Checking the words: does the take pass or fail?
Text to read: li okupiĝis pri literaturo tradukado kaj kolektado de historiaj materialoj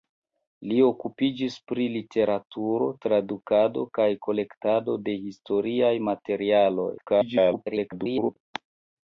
fail